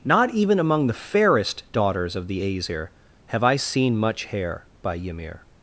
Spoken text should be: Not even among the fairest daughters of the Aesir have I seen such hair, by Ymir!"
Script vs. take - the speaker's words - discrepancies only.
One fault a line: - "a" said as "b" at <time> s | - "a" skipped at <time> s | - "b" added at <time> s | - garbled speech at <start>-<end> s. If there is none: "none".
- "such" said as "much" at 4.0 s